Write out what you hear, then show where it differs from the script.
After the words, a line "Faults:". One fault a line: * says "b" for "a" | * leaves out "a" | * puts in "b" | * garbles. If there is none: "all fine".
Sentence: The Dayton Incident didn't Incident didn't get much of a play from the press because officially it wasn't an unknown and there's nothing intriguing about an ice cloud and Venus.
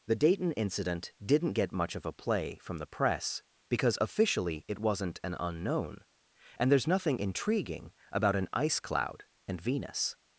The Dayton Incident didn't get much of a play from the press because officially it wasn't an unknown and there's nothing intriguing about an ice cloud and Venus.
Faults:
* leaves out "Incident didn't"